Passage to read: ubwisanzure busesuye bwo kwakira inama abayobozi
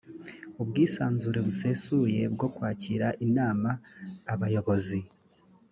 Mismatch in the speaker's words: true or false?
false